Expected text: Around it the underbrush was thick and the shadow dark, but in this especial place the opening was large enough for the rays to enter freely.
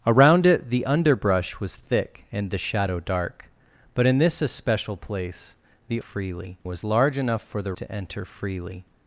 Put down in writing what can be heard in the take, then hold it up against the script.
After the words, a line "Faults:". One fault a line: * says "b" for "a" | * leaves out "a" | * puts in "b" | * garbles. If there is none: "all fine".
Around it the underbrush was thick and the shadow dark, but in this especial place the freely was large enough for the to enter freely.
Faults:
* says "freely" for "opening"
* leaves out "rays"